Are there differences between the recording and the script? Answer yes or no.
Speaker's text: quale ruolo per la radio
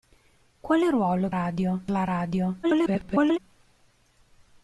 yes